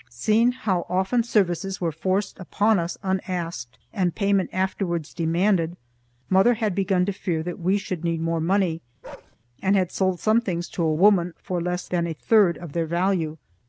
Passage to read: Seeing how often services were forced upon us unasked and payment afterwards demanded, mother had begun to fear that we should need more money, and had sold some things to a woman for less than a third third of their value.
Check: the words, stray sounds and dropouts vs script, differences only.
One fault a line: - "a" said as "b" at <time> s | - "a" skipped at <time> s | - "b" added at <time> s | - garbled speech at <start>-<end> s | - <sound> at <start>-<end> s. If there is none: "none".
- bark at 9.0-9.4 s
- "third" skipped at 12.6 s